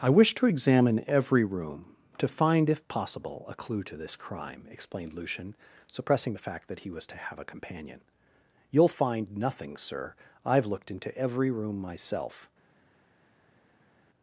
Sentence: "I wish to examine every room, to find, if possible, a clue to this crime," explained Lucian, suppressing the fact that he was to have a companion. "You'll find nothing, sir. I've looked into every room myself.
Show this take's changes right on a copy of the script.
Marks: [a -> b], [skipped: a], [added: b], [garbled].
"I wish to examine every room, to find, if possible, a clue to this crime," explained Lucian, suppressing the fact that he was to have a companion. "You'll find nothing, sir. I've looked into every room myself.